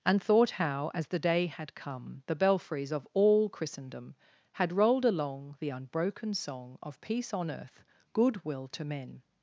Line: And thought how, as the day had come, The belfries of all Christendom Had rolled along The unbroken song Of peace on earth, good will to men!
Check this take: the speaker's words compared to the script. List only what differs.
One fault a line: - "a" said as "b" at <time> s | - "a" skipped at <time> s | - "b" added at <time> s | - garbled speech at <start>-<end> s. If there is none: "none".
none